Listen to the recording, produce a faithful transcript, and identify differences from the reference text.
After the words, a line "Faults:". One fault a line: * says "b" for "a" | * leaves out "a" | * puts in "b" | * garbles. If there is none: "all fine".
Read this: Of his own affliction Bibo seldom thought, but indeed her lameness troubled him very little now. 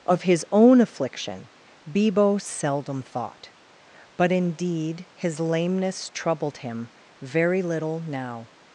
Of his own affliction Bibo seldom thought, but indeed his lameness troubled him very little now.
Faults:
* says "his" for "her"